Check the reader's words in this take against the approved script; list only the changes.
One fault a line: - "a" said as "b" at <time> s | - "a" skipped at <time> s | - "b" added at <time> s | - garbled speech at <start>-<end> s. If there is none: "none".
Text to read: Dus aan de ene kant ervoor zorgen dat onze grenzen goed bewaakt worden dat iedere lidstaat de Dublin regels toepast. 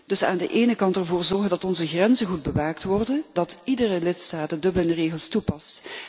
none